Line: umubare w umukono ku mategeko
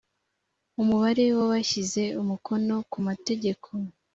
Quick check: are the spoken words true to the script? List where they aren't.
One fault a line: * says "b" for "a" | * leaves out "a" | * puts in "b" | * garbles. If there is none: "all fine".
* puts in "abashyize"